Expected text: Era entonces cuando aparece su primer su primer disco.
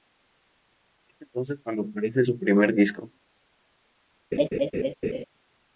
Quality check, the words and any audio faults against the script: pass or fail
fail